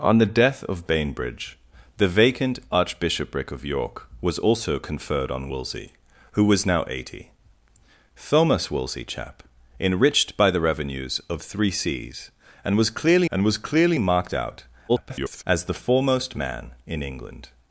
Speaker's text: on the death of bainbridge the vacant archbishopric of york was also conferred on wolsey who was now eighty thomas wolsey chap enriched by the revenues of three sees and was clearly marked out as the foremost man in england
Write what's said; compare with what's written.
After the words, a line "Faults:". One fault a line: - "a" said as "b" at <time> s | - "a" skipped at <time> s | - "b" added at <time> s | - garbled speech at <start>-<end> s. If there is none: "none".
on the death of bainbridge the vacant archbishopric of york was also conferred on wolsey who was now eighty thomas wolsey chap enriched by the revenues of three sees and was clearly and was clearly marked out [garbled] as the foremost man in england
Faults:
- "and was clearly" added at 13.3 s
- garbled speech at 14.9-15.4 s